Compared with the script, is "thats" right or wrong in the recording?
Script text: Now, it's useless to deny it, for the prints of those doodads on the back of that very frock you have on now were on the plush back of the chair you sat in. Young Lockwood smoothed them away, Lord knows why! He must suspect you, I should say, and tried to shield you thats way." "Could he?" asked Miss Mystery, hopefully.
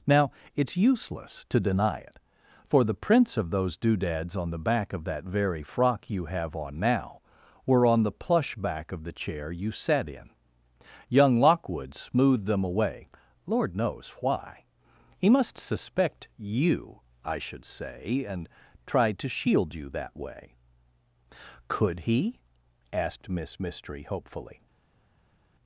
wrong